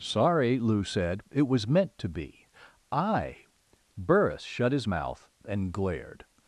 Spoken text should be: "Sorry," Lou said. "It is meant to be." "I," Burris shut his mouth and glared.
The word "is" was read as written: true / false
false